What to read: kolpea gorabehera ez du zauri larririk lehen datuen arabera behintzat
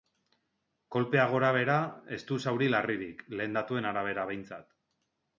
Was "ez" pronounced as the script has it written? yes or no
yes